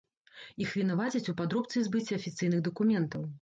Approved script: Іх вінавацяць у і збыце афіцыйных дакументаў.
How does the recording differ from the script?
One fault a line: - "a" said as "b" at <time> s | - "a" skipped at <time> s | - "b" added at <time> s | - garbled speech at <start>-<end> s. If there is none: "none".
- "падробцы" added at 1.4 s